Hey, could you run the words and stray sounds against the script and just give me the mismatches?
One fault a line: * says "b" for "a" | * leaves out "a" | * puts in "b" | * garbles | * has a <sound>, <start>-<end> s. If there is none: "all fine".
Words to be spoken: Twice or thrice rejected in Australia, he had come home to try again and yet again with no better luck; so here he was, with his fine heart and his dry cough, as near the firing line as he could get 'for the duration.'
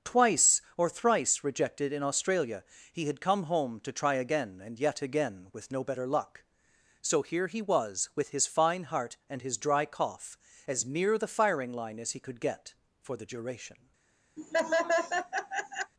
* has a laugh, 14.4-15.9 s